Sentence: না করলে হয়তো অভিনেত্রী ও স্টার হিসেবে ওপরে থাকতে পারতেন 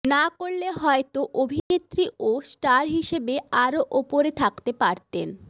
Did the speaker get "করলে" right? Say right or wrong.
right